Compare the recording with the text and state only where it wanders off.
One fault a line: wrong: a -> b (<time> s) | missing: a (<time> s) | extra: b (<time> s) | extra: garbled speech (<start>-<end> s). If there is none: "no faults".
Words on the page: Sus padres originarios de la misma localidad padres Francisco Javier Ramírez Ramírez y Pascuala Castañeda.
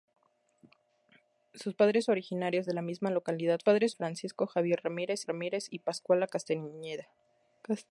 no faults